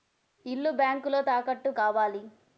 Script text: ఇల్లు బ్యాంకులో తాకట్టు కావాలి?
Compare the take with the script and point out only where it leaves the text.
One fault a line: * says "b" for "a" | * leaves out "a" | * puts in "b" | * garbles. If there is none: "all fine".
all fine